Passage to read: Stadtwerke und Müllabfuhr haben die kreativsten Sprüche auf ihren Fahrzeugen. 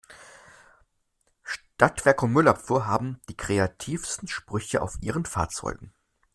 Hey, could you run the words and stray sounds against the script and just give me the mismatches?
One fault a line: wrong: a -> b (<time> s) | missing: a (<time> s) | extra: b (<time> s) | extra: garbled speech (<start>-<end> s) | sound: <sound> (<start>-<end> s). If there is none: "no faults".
no faults